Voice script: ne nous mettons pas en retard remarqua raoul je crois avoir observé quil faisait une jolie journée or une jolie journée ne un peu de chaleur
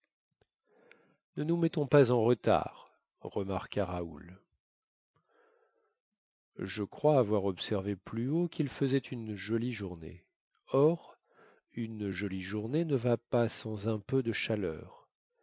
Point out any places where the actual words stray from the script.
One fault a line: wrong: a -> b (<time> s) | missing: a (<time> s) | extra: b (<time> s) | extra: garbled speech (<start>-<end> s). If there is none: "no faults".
extra: plus haut (8.0 s)
extra: va pas sans (13.0 s)